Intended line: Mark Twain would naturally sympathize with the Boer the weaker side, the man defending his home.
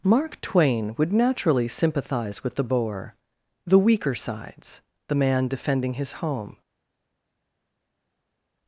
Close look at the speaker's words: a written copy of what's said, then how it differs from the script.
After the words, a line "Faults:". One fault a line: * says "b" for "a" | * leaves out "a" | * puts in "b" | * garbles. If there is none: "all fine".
Mark Twain would naturally sympathize with the Boer the weaker sides, the man defending his home.
Faults:
* says "sides" for "side"